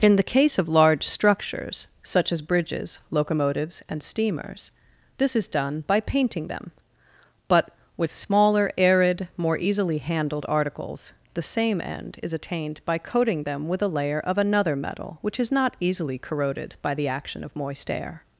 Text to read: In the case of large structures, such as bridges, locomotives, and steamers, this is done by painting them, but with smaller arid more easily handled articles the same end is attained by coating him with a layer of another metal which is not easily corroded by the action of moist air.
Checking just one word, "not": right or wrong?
right